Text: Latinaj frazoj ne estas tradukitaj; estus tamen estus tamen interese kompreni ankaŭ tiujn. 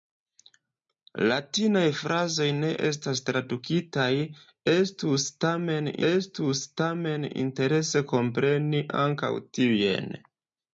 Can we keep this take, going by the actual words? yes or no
yes